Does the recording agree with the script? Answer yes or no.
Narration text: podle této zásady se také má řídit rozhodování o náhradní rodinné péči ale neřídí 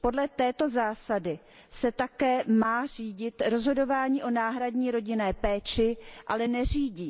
yes